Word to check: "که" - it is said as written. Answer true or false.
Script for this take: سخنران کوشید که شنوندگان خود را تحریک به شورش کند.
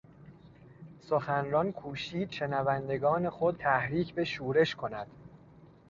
false